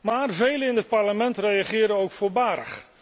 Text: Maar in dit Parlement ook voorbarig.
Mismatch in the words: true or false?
true